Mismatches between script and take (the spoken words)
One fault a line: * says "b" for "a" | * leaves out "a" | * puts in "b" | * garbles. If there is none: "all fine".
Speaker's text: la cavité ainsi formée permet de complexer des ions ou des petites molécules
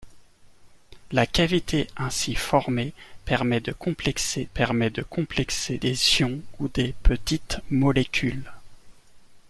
* puts in "permet de complexer"